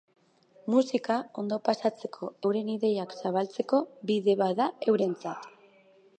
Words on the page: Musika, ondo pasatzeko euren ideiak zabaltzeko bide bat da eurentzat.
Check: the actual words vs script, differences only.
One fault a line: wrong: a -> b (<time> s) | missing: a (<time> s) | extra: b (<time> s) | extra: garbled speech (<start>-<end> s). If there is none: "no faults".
no faults